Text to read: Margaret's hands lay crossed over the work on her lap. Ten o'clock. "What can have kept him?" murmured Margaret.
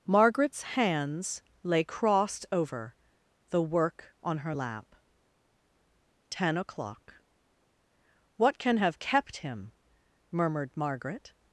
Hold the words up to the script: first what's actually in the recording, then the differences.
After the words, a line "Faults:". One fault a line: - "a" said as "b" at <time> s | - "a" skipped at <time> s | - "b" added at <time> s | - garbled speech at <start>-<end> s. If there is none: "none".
Margaret's hands lay crossed over the work on her lap. Ten o'clock. "What can have kept him?" murmured Margaret.
Faults:
none